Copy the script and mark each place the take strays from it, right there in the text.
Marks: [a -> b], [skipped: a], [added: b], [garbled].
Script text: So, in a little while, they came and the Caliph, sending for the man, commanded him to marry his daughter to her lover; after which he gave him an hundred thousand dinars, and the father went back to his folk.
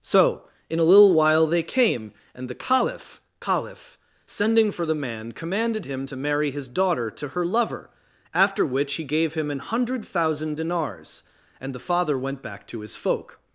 So, in a little while, they came and the Caliph, [added: Caliph] sending for the man, commanded him to marry his daughter to her lover; after which he gave him an hundred thousand dinars, and the father went back to his folk.